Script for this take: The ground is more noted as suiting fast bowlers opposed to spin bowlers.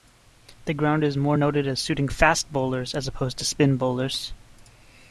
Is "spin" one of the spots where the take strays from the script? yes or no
no